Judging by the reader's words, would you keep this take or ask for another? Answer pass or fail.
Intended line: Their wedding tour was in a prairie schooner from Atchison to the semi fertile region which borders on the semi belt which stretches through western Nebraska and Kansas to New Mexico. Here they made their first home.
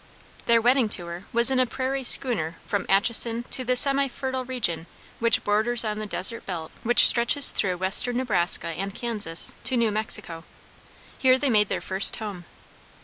fail